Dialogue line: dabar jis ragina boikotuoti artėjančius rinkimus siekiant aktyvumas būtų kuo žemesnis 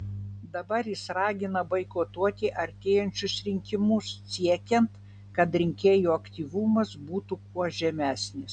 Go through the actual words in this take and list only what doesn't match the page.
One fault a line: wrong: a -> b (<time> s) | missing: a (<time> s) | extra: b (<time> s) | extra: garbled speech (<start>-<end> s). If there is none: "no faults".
extra: kad rinkėjų (5.4 s)